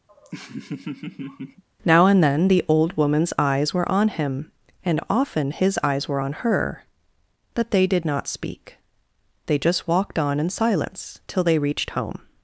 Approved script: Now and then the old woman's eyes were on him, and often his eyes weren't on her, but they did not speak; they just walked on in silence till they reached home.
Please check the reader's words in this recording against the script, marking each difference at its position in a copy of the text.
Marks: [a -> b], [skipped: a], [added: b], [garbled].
Now and then the old woman's eyes were on him, and often his eyes [weren't -> were] on her, but they did not speak; they just walked on in silence till they reached home.